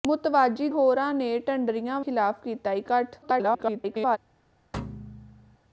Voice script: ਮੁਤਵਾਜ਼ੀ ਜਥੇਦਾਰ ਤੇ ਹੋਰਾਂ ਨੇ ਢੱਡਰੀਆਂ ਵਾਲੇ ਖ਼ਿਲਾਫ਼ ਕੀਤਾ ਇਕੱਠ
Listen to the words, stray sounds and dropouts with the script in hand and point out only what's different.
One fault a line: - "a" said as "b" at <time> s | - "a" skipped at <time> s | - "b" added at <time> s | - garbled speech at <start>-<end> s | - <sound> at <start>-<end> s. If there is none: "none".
- "ਜਥੇਦਾਰ ਤੇ" skipped at 0.7 s
- "ਵਾਲੇ" skipped at 2.0 s
- garbled speech at 3.2-4.2 s
- thud at 4.7-5.6 s